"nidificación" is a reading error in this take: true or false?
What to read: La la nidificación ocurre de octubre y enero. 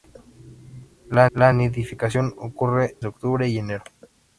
false